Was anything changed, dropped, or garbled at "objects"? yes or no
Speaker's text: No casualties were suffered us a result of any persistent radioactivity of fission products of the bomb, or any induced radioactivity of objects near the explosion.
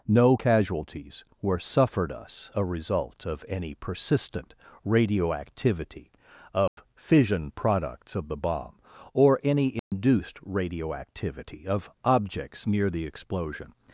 no